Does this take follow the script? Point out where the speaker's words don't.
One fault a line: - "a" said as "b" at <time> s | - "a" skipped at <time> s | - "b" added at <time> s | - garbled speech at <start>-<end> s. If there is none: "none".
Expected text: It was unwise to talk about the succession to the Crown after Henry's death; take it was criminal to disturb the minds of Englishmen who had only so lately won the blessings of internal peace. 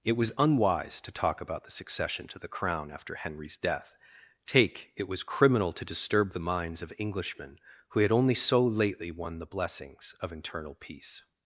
none